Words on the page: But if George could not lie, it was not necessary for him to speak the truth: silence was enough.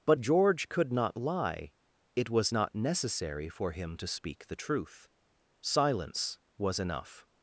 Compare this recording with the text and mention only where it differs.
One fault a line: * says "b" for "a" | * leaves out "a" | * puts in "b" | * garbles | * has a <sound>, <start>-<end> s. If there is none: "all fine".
* leaves out "if"